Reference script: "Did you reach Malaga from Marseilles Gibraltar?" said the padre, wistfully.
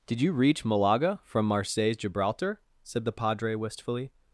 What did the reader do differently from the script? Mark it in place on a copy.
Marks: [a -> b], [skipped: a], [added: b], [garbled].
"Did you reach Malaga from Marseilles Gibraltar?" said the padre, wistfully.